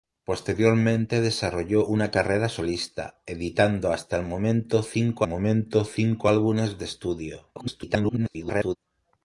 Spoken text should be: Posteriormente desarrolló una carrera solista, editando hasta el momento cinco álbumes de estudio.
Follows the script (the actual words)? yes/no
no